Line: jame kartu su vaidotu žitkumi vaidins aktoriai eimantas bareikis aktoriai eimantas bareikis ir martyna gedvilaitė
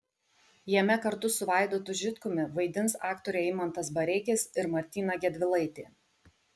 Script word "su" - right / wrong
right